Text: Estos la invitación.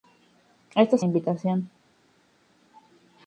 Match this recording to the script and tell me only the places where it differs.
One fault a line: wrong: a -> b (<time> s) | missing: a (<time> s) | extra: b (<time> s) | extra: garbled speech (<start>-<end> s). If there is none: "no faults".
no faults